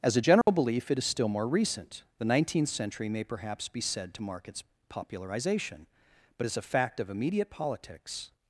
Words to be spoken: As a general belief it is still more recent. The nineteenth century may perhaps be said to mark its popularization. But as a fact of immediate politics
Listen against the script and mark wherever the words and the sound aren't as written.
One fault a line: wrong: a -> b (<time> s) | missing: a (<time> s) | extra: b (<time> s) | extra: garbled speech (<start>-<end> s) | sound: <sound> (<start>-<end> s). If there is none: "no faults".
sound: dropout (0.4-0.5 s)